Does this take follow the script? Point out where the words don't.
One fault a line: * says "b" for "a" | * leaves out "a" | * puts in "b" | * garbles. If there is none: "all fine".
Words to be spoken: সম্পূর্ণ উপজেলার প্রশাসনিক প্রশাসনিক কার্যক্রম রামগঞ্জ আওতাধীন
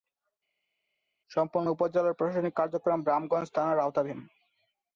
* leaves out "প্রশাসনিক"
* puts in "থানার"